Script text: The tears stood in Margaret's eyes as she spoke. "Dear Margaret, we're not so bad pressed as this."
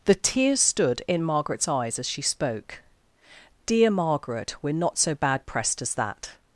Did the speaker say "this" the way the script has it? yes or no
no